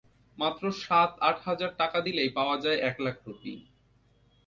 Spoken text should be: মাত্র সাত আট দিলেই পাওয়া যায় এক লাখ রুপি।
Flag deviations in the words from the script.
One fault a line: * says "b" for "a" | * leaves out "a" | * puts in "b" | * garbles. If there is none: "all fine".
* puts in "হাজার টাকা"